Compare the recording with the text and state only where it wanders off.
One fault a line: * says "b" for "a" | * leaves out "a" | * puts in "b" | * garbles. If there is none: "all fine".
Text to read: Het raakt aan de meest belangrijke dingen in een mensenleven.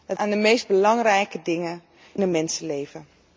* leaves out "raakt"
* leaves out "in"